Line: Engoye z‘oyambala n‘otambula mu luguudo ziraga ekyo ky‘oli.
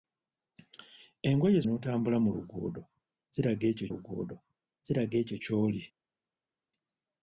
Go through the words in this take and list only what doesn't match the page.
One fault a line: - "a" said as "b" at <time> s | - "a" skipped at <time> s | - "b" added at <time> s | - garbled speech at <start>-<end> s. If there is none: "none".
- "z‘oyambala" skipped at 1.6 s
- "luguudo ziraga ekyo" added at 3.9 s